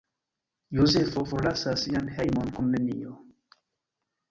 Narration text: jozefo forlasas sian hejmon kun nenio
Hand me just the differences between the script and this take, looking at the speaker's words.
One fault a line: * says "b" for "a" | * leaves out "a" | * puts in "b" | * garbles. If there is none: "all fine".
all fine